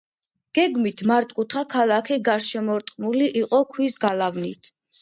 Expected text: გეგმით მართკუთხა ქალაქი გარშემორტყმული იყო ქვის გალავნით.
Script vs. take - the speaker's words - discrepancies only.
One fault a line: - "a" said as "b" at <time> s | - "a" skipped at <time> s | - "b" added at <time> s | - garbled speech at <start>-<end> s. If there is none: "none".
none